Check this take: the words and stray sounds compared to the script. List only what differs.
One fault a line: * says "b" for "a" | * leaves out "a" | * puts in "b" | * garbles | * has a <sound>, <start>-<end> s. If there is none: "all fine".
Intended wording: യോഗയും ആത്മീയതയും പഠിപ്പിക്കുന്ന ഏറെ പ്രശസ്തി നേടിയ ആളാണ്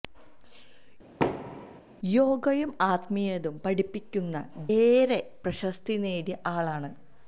* has a thud, 1.2-1.8 s